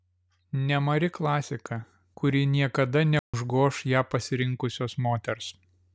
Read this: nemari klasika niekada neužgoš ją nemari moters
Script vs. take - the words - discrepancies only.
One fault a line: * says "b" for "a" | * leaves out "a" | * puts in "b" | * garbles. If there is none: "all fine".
* puts in "kuri"
* says "pasirinkusios" for "nemari"